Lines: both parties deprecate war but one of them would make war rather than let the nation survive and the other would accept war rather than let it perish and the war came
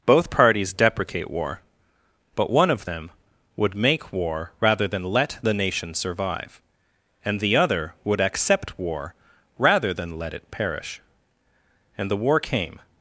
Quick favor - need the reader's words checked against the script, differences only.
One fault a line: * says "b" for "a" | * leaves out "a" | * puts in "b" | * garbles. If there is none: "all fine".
all fine